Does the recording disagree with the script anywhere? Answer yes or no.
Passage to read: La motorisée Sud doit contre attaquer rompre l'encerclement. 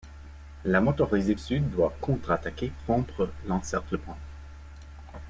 no